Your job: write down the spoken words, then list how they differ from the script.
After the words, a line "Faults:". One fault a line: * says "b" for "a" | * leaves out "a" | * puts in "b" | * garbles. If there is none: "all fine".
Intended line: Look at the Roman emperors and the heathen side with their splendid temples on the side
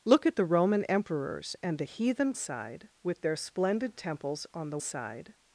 Look at the Roman emperors and the heathen side with their splendid temples on the side
Faults:
all fine